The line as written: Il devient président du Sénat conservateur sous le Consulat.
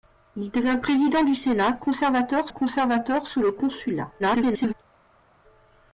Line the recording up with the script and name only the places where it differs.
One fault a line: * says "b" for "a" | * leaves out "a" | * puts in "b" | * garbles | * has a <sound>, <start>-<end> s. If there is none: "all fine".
* puts in "conservateur"
* garbles